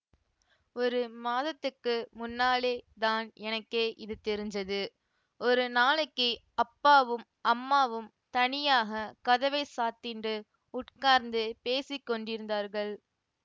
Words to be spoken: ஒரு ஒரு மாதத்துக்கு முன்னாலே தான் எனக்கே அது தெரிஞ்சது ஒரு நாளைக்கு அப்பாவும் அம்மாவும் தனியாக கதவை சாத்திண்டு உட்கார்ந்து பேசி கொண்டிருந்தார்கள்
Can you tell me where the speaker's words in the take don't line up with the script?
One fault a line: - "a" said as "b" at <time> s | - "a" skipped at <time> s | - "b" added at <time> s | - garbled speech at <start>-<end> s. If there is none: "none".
- "ஒரு" skipped at 1.0 s
- "அது" said as "இது" at 4.0 s